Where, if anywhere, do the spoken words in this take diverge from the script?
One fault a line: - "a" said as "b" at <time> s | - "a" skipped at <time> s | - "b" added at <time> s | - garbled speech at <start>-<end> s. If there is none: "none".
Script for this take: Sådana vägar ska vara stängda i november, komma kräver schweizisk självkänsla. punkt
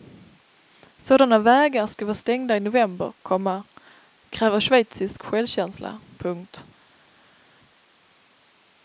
none